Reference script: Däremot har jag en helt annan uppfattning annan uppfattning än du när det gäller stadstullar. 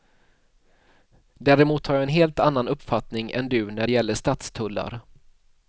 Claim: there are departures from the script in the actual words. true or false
true